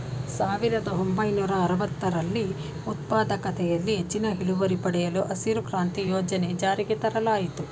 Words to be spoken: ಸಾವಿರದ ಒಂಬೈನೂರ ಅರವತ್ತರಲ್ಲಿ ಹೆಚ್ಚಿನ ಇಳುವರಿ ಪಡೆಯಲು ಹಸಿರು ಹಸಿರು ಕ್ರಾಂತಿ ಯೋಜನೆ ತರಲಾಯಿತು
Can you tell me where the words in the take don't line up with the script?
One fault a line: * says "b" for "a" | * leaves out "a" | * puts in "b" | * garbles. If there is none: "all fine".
* puts in "ಉತ್ಪಾದಕತೆಯಲ್ಲಿ"
* leaves out "ಹಸಿರು"
* puts in "ಜಾರಿಗೆ"